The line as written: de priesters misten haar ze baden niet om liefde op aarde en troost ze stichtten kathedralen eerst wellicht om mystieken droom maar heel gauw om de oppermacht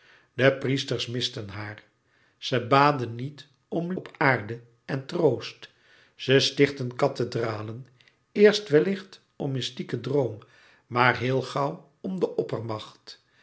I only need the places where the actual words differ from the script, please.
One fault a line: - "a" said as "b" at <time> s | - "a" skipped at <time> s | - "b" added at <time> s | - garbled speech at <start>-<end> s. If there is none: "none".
- "liefde" skipped at 3.9 s